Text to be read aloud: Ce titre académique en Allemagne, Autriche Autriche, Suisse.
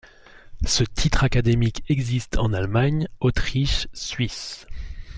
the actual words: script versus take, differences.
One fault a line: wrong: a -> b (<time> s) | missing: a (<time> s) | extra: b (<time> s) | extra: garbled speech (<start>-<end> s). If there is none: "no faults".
extra: existe (1.9 s)
missing: Autriche (3.9 s)